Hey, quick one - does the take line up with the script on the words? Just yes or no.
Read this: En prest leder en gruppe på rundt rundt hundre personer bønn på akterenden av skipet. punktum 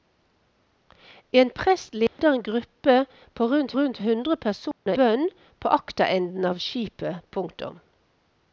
yes